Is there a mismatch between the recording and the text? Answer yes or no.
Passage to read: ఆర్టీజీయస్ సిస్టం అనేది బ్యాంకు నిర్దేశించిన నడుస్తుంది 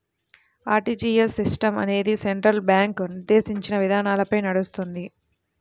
yes